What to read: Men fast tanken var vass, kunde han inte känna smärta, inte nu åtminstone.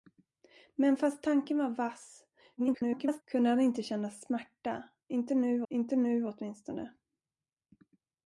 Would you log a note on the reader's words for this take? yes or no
yes